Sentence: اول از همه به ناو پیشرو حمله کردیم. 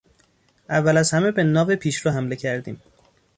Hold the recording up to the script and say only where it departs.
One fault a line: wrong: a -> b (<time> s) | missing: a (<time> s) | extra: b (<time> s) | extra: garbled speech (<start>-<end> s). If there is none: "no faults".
no faults